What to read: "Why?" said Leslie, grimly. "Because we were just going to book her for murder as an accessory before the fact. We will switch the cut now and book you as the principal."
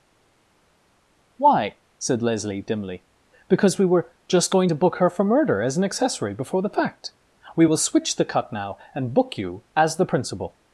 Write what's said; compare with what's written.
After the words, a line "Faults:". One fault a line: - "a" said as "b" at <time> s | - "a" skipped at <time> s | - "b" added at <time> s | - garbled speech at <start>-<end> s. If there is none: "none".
"Why?" said Leslie, dimly. "Because we were just going to book her for murder as an accessory before the fact. We will switch the cut now and book you as the principal."
Faults:
- "grimly" said as "dimly" at 2.6 s